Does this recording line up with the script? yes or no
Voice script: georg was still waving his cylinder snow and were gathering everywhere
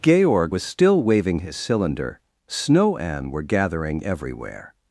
yes